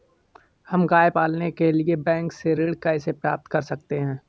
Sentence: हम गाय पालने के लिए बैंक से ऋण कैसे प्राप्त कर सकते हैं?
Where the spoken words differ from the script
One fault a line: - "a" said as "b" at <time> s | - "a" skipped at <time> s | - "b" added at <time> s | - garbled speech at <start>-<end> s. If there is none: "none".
none